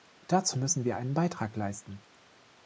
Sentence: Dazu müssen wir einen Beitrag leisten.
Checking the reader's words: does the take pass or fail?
pass